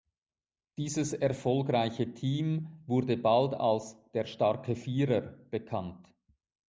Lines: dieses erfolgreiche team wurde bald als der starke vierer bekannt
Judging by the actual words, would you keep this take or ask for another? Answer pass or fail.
pass